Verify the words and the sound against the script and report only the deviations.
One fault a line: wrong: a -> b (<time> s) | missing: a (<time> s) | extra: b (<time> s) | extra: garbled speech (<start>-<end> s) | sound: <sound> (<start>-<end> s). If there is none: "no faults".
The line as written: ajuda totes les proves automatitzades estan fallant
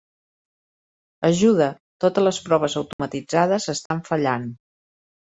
sound: dropout (2.9-3.0 s)
sound: dropout (3.9-3.9 s)